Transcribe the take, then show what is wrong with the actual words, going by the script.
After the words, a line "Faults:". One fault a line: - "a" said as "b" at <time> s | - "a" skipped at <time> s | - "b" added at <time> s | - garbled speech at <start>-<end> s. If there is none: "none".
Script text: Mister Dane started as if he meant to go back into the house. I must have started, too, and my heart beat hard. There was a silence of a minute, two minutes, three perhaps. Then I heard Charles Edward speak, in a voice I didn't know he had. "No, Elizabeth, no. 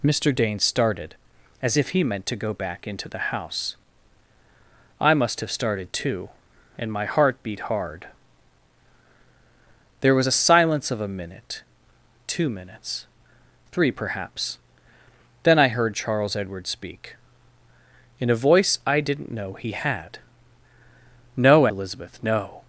Mister Dane started as if he meant to go back into the house. I must have started, too, and my heart beat hard. There was a silence of a minute, two minutes, three perhaps. Then I heard Charles Edward speak, in a voice I didn't know he had. "No, Elizabeth, no.
Faults:
none